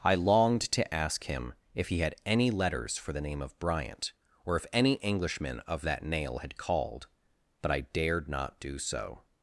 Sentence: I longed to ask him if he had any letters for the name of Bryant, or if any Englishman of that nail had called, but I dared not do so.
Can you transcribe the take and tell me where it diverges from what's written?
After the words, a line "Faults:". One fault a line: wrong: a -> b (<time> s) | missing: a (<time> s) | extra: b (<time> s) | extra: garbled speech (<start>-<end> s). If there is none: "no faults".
I longed to ask him if he had any letters for the name of Bryant, or if any Englishman of that nail had called, but I dared not do so.
Faults:
no faults